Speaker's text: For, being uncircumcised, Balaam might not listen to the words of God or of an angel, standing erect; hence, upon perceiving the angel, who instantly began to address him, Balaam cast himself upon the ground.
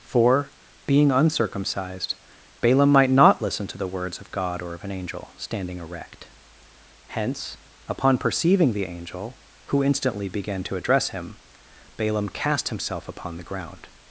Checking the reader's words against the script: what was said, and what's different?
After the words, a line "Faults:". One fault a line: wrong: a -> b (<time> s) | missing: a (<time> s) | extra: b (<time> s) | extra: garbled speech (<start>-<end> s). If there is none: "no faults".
For, being uncircumcised, Balaam might not listen to the words of God or of an angel, standing erect; hence, upon perceiving the angel, who instantly began to address him, Balaam cast himself upon the ground.
Faults:
no faults